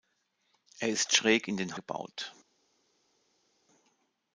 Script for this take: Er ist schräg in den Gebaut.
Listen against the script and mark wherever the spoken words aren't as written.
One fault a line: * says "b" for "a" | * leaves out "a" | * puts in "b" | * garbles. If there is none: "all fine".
all fine